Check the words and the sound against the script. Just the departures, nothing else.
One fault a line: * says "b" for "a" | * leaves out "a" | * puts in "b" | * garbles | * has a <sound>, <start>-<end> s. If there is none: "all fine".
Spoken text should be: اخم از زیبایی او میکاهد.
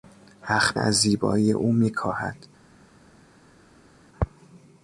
all fine